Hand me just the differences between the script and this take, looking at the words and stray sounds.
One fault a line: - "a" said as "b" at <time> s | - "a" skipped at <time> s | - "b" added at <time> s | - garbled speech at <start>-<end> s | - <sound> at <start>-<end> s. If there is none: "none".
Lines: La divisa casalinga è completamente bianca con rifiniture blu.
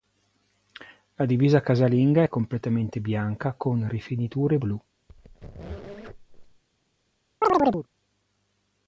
- squeak at 5.1-6.6 s
- chirp at 7.4-7.9 s